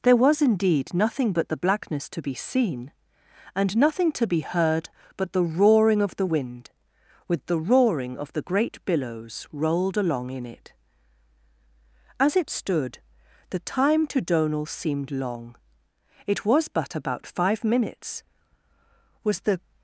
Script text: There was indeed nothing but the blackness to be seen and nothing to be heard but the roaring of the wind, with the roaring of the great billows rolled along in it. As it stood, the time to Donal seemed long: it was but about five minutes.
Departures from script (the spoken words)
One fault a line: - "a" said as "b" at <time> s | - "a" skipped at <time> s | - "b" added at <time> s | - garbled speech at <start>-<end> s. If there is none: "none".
- "Was the" added at 19.2 s